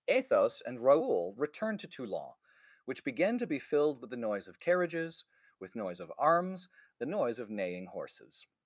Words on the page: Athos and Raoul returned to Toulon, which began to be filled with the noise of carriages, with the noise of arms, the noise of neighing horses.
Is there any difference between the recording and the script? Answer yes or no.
yes